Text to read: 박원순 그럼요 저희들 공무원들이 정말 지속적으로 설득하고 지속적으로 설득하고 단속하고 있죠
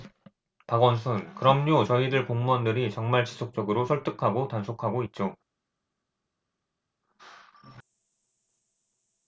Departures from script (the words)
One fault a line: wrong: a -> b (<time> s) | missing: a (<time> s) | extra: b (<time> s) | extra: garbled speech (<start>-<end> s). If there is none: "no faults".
missing: 지속적으로 설득하고 (4.5 s)